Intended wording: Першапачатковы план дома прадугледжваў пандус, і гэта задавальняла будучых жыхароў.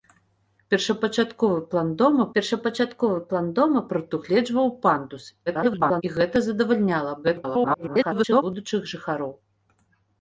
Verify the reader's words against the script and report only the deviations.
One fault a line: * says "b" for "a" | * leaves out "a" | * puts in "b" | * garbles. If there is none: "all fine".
* puts in "першапачатковы план дома"
* garbles
* garbles